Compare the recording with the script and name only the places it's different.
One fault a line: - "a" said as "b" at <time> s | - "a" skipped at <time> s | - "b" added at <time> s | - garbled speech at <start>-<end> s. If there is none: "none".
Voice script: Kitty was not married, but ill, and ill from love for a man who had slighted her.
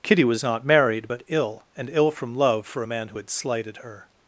none